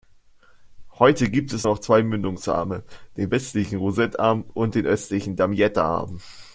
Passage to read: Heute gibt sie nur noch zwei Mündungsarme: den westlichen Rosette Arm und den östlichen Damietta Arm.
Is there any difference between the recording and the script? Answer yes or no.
yes